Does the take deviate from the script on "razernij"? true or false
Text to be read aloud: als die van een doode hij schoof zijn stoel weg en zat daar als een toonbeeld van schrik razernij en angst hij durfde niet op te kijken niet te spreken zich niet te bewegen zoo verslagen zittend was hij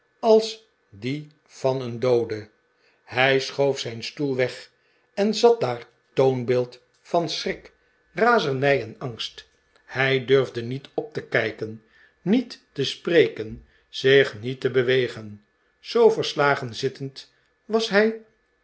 false